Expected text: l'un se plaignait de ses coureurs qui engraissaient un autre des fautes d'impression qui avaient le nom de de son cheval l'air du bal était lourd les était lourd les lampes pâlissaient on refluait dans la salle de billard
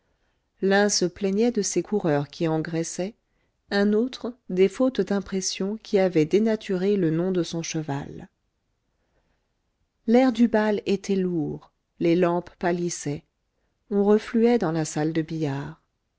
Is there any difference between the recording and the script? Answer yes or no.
yes